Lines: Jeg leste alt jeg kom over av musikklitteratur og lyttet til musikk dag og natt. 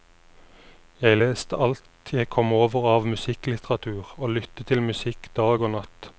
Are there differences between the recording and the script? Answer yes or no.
no